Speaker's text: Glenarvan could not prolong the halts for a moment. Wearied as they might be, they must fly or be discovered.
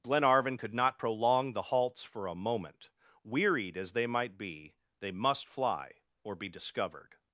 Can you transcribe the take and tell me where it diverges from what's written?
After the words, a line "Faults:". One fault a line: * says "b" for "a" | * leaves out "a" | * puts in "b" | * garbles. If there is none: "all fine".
Glenarvan could not prolong the halts for a moment. Wearied as they might be, they must fly or be discovered.
Faults:
all fine